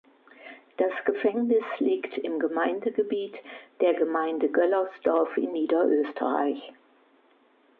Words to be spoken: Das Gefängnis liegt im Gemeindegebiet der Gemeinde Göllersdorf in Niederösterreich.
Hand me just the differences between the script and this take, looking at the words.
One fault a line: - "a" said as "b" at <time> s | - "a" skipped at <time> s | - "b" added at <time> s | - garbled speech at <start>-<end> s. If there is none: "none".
none